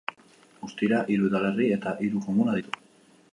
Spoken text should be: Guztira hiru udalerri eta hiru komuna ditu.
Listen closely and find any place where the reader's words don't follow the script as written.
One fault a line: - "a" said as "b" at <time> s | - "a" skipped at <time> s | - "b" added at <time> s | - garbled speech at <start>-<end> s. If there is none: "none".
none